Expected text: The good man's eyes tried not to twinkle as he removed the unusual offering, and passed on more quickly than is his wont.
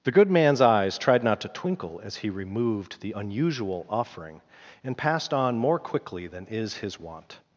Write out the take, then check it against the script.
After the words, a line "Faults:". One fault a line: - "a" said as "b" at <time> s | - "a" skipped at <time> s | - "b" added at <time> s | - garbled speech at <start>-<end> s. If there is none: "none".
The good man's eyes tried not to twinkle as he removed the unusual offering, and passed on more quickly than is his wont.
Faults:
none